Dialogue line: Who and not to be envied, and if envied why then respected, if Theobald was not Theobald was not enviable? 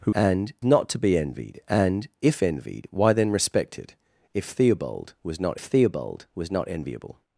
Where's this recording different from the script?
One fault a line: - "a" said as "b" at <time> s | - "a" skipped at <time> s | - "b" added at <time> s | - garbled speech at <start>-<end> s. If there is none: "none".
none